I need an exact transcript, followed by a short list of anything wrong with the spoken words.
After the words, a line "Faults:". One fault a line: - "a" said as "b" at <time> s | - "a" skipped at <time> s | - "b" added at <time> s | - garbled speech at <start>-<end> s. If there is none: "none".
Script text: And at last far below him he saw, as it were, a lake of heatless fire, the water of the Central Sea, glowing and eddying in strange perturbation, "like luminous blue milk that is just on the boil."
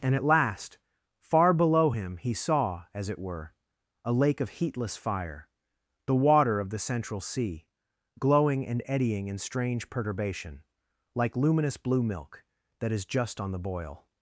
And at last far below him he saw, as it were, a lake of heatless fire, the water of the Central Sea, glowing and eddying in strange perturbation, "like luminous blue milk that is just on the boil."
Faults:
none